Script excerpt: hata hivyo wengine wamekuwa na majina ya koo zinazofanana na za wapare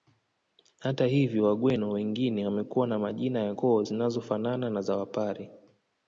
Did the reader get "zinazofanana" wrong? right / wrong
right